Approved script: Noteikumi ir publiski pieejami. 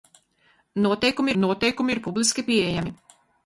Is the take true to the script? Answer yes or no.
no